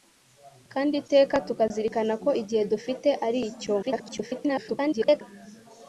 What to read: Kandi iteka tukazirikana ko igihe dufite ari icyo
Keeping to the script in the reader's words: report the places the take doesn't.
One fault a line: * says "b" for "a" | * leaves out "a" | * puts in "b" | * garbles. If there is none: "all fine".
* garbles